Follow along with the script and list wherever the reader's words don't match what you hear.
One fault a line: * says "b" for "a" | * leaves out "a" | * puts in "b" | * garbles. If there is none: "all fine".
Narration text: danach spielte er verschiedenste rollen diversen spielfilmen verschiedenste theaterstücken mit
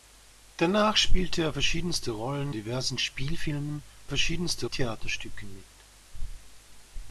all fine